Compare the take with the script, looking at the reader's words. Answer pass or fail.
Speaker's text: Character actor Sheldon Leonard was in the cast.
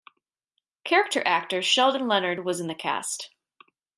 pass